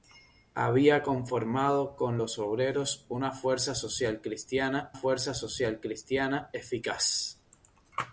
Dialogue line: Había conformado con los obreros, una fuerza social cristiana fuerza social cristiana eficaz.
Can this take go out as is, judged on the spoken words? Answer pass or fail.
pass